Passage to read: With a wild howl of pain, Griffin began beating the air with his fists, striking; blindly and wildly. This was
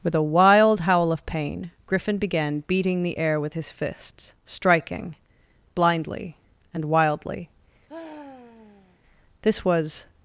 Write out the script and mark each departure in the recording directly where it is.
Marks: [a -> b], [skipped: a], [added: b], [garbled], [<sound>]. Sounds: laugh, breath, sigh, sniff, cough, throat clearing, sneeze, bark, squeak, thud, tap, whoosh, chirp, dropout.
With a wild howl of pain, Griffin began beating the air with his fists, striking; blindly and wildly. [sigh] This was